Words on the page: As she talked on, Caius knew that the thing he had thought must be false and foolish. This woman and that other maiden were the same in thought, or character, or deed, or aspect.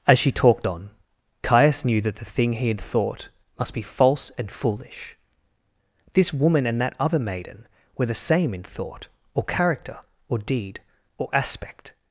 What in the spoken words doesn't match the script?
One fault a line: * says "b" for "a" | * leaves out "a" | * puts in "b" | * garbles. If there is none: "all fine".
all fine